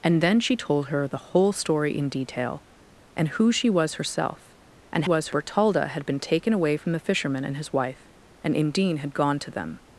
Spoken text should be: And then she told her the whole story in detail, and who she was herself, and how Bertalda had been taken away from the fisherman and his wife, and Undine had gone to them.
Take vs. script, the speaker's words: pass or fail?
fail